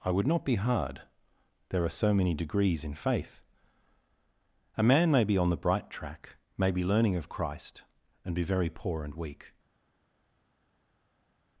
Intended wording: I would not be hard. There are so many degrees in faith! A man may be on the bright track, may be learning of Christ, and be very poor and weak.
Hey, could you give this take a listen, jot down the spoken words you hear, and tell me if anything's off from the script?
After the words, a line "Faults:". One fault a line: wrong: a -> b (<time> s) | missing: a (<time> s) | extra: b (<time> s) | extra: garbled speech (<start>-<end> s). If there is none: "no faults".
I would not be hard. There are so many degrees in faith! A man may be on the bright track, may be learning of Christ, and be very poor and weak.
Faults:
no faults